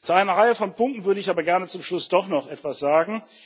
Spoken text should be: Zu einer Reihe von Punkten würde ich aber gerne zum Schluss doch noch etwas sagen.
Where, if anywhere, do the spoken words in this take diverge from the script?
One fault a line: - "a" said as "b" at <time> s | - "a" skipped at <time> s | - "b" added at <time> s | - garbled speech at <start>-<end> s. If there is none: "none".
none